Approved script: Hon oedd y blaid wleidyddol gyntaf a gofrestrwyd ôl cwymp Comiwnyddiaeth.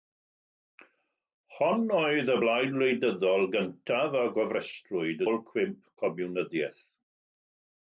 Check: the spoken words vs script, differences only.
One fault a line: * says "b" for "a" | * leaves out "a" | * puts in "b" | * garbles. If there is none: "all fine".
all fine